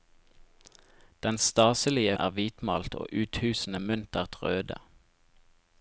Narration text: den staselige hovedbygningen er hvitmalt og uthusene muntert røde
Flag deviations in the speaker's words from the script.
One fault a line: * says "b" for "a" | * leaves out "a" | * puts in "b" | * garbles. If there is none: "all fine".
* leaves out "hovedbygningen"